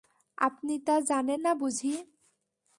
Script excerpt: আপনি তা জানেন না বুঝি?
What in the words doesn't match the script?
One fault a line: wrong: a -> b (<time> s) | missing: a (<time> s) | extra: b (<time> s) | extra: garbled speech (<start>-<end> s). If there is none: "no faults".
no faults